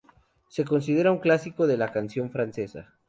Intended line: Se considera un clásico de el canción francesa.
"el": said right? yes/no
no